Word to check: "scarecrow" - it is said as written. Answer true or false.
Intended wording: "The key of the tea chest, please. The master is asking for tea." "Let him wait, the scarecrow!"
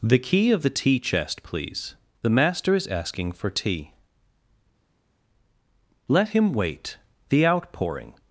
false